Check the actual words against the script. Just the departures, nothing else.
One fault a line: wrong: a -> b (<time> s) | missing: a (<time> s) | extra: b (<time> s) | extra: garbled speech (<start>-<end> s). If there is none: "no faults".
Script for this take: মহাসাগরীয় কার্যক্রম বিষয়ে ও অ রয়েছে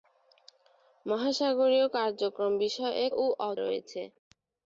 no faults